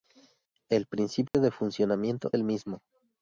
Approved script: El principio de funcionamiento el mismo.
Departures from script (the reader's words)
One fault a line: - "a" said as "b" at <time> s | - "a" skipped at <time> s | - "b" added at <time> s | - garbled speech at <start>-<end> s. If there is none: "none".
none